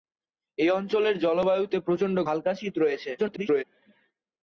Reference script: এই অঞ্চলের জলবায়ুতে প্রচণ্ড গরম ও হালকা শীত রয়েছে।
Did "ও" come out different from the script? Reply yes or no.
yes